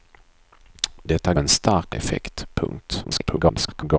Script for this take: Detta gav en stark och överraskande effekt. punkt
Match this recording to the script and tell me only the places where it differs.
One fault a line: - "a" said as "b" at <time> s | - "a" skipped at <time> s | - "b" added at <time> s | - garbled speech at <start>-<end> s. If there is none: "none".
- "gav" skipped at 1.3 s
- "och överraskande" skipped at 2.0 s
- garbled speech at 3.0-4.0 s